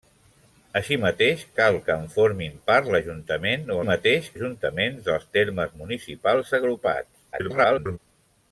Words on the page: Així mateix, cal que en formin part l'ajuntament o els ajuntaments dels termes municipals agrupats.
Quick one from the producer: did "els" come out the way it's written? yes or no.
no